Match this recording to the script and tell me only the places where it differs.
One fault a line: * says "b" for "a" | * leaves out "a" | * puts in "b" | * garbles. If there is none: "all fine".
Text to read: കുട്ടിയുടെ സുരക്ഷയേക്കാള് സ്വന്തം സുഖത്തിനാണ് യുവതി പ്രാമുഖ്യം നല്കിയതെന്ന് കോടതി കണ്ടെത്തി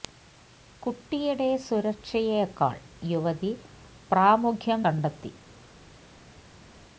* leaves out "സ്വന്തം സുഖത്തിനാണ്"
* leaves out "നല്കിയതെന്ന് കോടതി"